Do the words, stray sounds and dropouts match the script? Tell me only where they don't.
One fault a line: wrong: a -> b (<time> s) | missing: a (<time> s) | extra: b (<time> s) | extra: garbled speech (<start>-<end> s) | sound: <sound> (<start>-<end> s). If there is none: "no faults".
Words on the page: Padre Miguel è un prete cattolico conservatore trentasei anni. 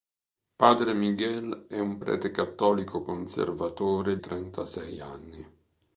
no faults